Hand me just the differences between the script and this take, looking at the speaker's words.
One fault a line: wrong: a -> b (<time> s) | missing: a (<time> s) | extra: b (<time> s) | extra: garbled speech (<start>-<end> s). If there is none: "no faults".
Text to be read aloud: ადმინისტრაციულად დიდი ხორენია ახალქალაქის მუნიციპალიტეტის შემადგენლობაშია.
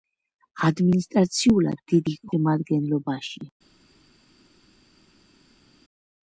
missing: ხორენია ახალქალაქის მუნიციპალიტეტის (2.1 s)